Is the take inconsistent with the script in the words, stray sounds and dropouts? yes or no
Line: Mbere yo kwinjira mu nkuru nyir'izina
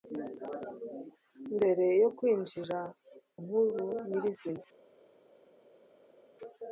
yes